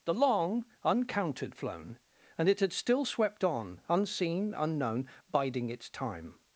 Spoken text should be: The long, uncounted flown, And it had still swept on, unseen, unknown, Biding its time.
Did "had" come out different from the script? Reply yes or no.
no